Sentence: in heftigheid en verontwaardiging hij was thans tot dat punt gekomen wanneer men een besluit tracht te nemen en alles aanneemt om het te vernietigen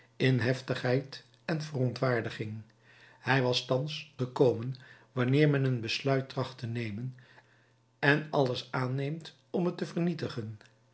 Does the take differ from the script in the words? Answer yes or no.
yes